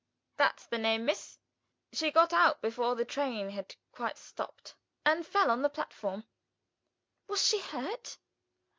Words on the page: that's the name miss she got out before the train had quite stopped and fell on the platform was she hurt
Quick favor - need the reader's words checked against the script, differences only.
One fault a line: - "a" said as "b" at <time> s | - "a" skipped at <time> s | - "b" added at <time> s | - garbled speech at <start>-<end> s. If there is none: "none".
none